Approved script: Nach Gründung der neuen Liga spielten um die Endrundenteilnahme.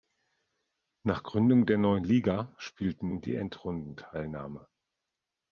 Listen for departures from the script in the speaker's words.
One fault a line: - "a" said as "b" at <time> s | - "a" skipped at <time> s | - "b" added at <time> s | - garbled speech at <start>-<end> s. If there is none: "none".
none